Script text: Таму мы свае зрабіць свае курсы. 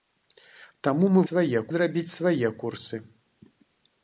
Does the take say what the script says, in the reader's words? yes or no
yes